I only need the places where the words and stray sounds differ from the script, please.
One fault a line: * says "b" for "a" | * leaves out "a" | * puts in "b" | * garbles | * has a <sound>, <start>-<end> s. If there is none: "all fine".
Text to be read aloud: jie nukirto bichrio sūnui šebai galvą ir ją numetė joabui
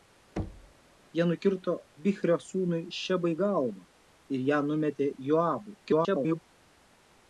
* has a thud, 0.4-0.7 s
* garbles